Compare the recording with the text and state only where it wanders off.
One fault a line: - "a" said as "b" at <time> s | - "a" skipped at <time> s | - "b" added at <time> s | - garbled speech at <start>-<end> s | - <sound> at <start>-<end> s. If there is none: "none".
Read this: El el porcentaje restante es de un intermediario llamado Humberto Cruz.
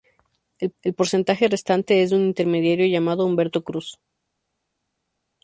none